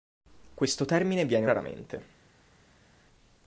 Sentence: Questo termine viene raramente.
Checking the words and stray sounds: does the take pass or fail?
pass